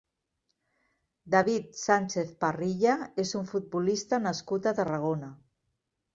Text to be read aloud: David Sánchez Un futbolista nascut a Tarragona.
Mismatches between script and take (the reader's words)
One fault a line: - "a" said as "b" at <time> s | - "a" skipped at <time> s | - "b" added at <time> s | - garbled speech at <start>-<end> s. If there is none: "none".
- "Parrilla és" added at 2.5 s